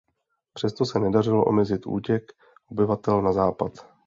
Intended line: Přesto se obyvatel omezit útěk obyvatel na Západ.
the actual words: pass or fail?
fail